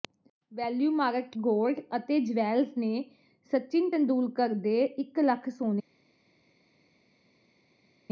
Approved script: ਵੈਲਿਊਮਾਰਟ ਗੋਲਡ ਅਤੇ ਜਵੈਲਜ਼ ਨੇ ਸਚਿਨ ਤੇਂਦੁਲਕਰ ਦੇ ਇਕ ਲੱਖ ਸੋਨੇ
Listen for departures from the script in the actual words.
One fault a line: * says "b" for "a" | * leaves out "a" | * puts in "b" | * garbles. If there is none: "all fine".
all fine